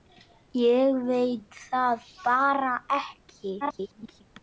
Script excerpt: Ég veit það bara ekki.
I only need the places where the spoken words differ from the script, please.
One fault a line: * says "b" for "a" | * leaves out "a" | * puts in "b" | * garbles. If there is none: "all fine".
* garbles